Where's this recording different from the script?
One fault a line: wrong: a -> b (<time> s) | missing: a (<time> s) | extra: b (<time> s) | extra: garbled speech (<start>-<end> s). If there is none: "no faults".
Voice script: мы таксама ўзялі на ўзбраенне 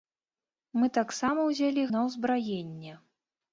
no faults